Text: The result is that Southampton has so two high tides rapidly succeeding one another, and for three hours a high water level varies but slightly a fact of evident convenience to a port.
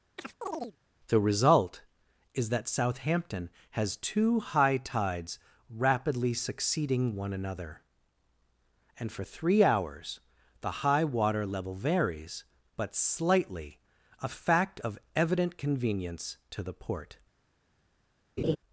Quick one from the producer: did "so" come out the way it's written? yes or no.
no